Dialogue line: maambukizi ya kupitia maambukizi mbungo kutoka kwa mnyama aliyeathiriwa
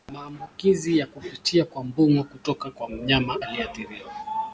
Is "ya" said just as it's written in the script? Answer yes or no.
yes